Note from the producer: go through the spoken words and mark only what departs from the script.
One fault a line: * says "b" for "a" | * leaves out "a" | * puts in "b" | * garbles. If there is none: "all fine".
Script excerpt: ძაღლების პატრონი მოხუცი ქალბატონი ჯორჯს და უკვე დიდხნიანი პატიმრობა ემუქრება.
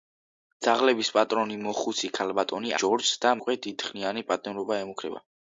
all fine